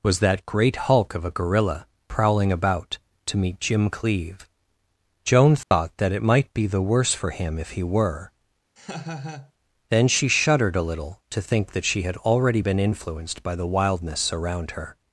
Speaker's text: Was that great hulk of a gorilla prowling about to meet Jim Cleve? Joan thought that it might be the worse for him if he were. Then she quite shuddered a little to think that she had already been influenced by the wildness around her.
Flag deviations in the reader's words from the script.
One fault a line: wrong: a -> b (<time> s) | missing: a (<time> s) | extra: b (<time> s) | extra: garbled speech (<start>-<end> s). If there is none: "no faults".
missing: quite (10.3 s)